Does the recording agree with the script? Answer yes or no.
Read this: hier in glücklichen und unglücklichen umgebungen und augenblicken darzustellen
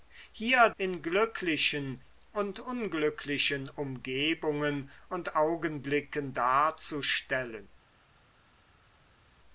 yes